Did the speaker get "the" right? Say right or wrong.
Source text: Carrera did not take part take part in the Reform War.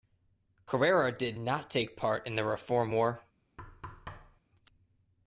right